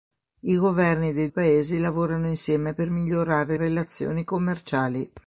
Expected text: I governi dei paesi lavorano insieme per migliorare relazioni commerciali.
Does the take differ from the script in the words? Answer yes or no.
no